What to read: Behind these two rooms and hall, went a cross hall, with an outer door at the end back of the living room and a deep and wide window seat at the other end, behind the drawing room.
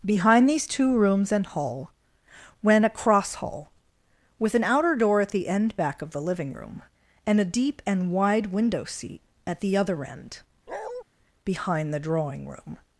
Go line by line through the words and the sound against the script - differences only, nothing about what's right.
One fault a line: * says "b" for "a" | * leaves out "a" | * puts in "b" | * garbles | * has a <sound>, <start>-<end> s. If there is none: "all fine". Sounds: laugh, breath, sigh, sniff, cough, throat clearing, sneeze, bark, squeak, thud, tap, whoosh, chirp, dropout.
* has a bark, 10.7-11.0 s